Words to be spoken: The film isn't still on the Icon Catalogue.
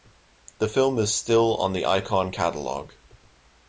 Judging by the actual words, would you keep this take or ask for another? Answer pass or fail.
fail